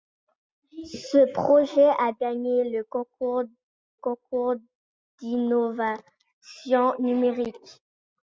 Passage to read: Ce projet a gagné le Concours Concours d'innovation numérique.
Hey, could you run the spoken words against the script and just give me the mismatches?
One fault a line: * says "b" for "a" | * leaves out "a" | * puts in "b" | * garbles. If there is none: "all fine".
all fine